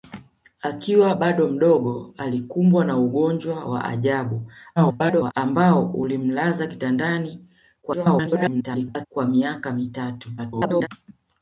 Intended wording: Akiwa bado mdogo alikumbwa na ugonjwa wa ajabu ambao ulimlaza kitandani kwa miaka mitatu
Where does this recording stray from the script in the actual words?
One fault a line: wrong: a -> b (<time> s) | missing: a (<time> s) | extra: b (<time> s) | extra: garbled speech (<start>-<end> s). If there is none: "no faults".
extra: garbled speech (4.8-5.3 s)
extra: garbled speech (7.8-9.1 s)
extra: garbled speech (10.4-10.9 s)